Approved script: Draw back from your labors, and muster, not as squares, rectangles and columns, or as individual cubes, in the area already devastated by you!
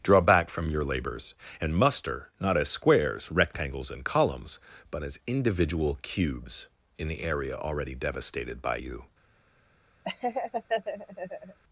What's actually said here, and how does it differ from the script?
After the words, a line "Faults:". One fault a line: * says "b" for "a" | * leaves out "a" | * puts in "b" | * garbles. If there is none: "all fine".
Draw back from your labors, and muster, not as squares, rectangles and columns, but as individual cubes, in the area already devastated by you!
Faults:
* says "but" for "or"